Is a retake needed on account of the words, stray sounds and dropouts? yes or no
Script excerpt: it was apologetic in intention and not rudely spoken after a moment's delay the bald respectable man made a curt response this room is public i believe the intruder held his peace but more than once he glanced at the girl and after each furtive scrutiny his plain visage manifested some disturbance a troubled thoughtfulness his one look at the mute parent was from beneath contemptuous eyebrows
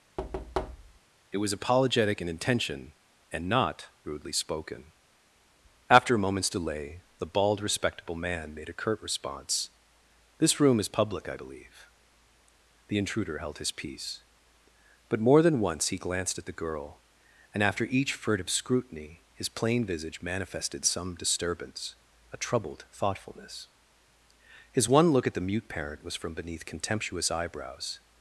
yes